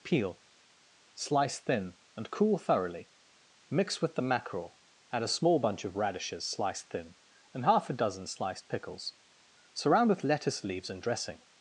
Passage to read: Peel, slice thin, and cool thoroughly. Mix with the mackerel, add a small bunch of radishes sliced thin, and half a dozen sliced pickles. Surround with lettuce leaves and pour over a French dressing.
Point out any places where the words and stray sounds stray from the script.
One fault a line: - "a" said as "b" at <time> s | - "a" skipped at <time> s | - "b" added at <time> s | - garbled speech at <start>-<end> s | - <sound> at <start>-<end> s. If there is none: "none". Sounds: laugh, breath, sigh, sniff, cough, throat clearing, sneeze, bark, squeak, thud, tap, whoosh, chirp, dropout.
- "pour over a French" skipped at 11.0 s